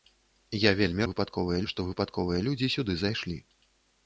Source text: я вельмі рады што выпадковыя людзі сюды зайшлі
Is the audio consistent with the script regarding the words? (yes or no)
no